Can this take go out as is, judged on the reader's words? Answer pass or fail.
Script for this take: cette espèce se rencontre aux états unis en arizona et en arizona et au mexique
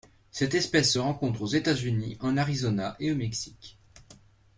fail